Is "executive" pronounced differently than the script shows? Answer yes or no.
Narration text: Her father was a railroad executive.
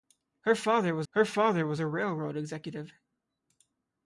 no